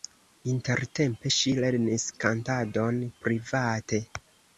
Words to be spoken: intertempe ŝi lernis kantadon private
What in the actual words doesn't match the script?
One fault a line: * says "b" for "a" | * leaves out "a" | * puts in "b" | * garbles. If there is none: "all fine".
all fine